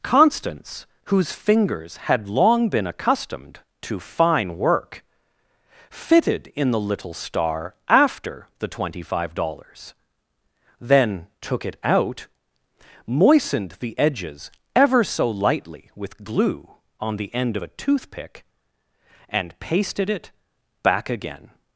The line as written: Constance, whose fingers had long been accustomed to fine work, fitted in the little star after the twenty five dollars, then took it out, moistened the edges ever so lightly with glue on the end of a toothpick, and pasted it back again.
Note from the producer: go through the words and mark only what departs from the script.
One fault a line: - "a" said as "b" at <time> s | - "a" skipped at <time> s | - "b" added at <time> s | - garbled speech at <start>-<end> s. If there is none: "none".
none